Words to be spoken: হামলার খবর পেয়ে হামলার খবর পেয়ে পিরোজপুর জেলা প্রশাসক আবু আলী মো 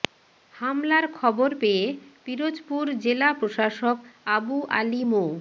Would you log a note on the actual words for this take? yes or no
yes